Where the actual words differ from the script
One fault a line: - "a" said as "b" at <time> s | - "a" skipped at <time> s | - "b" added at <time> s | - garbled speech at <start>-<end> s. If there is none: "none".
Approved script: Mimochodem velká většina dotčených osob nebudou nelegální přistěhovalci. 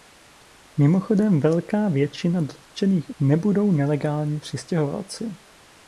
- "osob" skipped at 3.1 s